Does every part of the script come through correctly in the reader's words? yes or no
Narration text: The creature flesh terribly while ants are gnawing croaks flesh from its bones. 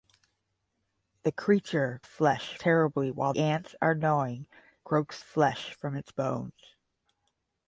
yes